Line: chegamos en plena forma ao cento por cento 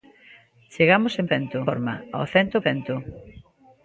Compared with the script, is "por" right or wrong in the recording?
wrong